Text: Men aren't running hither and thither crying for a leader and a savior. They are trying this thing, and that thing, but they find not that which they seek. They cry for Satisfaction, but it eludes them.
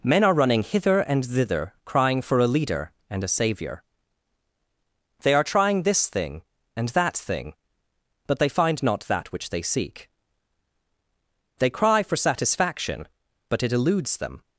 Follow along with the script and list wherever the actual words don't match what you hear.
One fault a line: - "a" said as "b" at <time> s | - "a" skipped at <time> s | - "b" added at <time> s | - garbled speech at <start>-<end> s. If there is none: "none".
- "aren't" said as "are" at 0.2 s